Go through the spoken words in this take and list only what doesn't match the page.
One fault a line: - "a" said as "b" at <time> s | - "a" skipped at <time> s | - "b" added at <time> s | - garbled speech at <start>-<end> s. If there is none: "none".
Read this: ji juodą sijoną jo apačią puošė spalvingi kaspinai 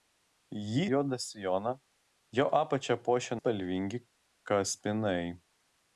none